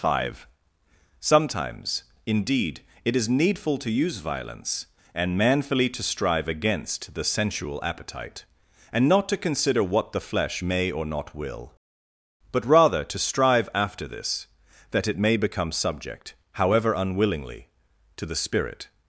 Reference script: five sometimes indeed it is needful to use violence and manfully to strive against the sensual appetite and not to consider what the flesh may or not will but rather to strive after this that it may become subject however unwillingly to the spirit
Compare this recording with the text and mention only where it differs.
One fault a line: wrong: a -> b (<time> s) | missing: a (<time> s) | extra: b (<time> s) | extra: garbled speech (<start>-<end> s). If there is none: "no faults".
no faults